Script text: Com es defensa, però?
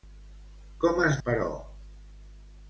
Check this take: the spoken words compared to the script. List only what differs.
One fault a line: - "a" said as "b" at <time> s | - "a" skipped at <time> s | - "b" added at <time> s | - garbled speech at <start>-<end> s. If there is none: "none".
- "defensa" skipped at 1.2 s